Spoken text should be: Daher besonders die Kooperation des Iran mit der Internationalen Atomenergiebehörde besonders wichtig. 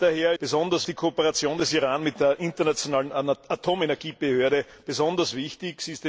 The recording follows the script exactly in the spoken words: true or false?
true